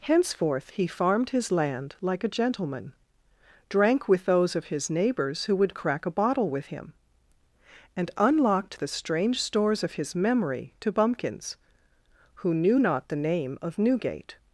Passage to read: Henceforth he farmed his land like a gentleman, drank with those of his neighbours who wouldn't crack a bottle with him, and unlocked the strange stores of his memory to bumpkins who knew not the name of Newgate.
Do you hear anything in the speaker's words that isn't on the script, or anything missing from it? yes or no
yes